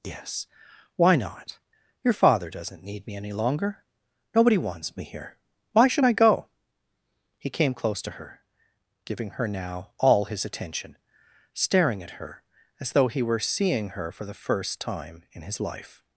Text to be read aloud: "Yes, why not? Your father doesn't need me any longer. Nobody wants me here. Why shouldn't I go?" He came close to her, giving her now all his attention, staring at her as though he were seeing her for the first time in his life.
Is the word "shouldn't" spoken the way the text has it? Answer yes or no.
no